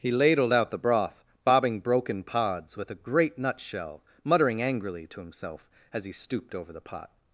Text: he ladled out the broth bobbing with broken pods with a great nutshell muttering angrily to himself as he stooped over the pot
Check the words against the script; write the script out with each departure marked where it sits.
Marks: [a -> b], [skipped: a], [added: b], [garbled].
he ladled out the broth bobbing [skipped: with] broken pods with a great nutshell muttering angrily to himself as he stooped over the pot